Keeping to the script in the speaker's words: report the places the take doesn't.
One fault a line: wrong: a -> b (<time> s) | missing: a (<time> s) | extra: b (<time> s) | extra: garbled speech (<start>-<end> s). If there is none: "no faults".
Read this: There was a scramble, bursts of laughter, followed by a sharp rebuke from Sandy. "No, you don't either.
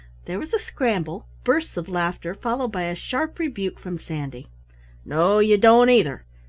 no faults